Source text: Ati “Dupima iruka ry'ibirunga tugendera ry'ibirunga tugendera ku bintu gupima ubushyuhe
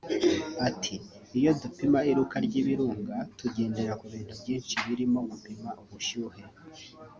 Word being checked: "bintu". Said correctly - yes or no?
no